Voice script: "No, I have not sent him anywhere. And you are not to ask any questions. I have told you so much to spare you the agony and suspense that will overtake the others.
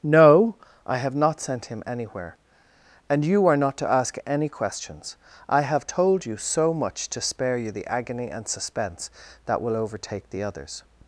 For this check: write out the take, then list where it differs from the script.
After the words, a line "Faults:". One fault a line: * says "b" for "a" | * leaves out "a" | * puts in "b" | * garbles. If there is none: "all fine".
"No, I have not sent him anywhere. And you are not to ask any questions. I have told you so much to spare you the agony and suspense that will overtake the others.
Faults:
all fine